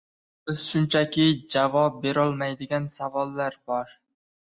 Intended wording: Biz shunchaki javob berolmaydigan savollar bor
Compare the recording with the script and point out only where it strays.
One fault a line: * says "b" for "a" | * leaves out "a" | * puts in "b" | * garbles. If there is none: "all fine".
all fine